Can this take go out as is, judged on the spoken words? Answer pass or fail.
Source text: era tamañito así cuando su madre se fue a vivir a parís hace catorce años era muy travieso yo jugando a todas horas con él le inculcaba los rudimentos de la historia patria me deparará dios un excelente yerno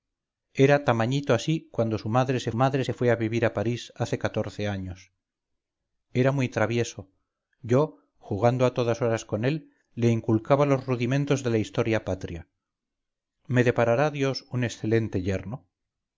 fail